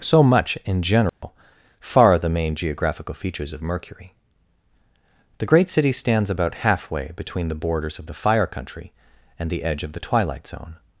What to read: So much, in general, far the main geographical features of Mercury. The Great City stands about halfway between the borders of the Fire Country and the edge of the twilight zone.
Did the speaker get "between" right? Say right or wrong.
right